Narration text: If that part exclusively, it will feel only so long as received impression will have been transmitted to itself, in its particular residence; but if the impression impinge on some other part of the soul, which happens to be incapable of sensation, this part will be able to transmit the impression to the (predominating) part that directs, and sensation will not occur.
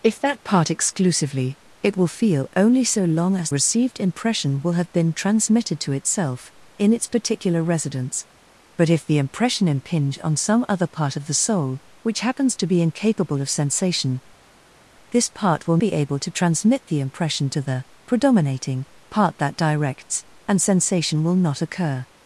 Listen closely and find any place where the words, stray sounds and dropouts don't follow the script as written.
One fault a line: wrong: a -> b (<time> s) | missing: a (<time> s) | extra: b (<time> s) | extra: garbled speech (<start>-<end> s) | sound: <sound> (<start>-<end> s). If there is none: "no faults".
no faults